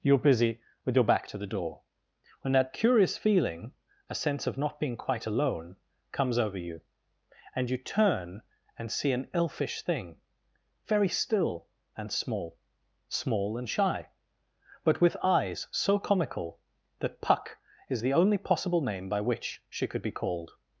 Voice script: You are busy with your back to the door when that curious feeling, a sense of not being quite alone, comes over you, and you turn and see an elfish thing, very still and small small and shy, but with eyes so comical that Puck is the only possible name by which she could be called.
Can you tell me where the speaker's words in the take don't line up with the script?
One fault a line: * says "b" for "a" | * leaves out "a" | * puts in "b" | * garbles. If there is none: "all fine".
all fine